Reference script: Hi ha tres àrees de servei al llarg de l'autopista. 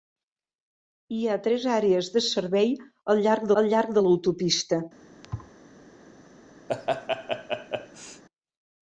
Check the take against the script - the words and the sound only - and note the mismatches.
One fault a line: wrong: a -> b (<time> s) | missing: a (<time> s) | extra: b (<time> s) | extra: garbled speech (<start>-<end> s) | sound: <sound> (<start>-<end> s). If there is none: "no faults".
extra: al llarg (3.6 s)
sound: thud (5.2-5.5 s)
sound: laugh (6.7-8.2 s)